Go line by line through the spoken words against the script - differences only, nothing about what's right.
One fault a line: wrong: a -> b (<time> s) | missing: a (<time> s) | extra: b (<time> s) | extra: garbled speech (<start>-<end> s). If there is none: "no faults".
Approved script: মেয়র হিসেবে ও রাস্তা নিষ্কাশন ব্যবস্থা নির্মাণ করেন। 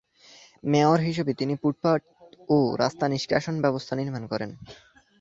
extra: তিনি ফুটপাত (1.3 s)